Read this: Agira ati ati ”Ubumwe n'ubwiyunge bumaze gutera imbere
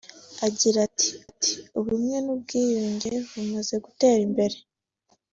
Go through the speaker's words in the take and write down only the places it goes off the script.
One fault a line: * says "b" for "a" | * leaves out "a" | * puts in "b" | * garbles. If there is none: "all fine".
all fine